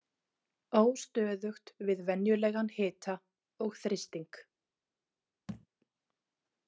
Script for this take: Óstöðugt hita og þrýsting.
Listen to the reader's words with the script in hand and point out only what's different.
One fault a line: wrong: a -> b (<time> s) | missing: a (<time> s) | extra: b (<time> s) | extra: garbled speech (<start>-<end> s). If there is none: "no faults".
extra: við venjulegan (1.9 s)